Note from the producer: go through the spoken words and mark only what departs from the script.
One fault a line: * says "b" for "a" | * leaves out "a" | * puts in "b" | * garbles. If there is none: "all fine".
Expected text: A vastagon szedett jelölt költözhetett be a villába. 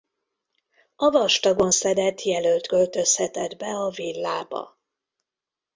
all fine